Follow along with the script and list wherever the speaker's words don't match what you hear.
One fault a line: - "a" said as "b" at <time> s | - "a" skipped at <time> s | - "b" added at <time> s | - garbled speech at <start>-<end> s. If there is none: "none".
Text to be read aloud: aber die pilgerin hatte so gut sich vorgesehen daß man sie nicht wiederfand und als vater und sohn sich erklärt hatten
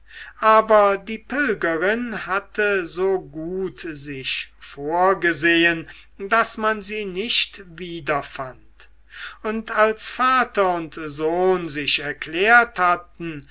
none